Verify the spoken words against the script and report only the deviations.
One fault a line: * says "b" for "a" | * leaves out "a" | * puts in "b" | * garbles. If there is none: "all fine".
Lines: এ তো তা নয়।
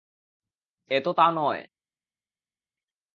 all fine